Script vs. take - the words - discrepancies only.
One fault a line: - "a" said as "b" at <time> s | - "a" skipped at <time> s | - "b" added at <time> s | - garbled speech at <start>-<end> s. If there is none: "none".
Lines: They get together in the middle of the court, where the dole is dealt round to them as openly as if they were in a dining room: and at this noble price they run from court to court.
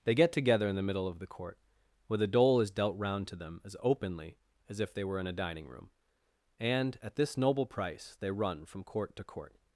none